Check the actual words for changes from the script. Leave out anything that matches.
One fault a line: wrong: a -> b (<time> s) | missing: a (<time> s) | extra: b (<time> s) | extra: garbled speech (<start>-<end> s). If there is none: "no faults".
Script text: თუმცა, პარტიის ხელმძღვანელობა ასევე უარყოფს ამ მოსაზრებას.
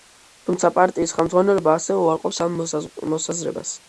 no faults